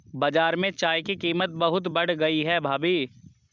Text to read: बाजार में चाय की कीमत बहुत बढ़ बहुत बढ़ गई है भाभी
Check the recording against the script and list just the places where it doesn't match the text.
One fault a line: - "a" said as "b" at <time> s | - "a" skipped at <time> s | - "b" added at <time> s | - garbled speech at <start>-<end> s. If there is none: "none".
- "बहुत बढ़" skipped at 2.1 s